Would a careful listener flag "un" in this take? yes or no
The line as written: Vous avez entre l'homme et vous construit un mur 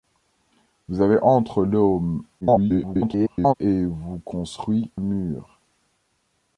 yes